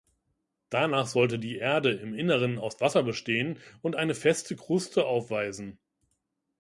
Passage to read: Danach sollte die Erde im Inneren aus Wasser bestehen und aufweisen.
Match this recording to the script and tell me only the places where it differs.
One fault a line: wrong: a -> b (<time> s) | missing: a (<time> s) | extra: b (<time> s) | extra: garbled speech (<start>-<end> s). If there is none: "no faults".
extra: eine feste Kruste (4.0 s)